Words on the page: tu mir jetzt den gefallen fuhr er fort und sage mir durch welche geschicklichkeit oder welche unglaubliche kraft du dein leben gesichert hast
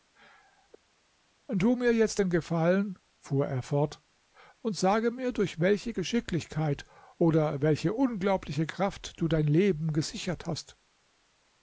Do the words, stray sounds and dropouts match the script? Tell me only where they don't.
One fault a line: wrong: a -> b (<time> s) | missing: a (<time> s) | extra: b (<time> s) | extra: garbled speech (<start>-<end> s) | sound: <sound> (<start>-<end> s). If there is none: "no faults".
no faults